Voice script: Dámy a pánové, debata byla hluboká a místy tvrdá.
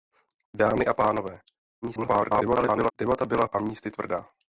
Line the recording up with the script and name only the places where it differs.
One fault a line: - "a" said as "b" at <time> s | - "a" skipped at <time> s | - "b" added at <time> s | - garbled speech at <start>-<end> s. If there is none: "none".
- garbled speech at 1.8-2.9 s
- "hluboká" skipped at 3.4 s